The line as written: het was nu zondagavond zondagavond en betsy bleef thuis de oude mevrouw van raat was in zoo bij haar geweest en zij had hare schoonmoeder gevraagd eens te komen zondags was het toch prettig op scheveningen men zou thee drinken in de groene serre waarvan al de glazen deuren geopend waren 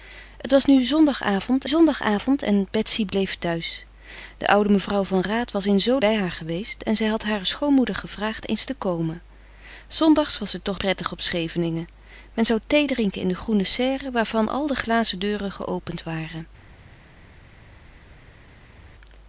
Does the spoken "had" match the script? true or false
true